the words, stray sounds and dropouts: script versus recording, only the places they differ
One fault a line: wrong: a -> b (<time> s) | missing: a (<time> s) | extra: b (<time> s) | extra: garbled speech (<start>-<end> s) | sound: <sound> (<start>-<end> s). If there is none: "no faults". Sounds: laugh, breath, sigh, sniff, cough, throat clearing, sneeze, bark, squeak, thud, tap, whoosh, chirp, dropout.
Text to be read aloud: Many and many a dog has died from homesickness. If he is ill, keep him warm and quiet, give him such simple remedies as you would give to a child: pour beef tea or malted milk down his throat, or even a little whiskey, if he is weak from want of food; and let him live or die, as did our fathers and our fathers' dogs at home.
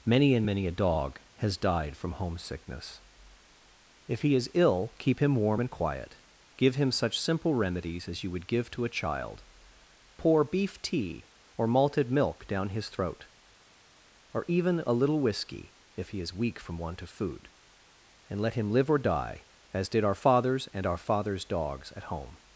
no faults